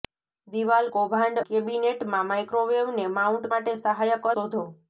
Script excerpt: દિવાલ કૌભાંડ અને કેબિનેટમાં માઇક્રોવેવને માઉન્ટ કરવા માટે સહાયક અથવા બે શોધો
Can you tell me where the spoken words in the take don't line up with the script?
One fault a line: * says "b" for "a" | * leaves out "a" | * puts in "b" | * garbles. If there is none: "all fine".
* leaves out "અને"
* leaves out "કરવા"
* leaves out "અથવા બે"